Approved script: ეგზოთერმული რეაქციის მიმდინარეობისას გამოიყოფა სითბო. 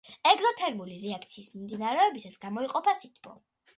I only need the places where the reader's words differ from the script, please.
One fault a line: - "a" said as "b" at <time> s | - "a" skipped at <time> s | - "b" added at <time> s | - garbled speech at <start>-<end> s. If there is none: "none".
none